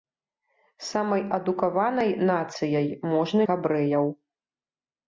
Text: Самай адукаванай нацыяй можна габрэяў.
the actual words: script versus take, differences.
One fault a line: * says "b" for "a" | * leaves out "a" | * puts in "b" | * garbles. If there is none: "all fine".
all fine